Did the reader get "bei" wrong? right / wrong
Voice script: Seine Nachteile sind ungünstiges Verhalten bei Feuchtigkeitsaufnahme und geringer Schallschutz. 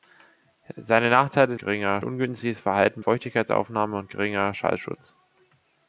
wrong